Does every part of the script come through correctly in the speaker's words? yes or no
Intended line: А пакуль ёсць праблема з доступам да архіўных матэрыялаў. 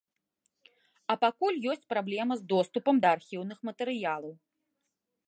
yes